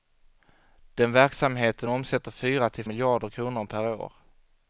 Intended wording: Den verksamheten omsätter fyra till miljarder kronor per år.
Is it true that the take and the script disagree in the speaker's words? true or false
false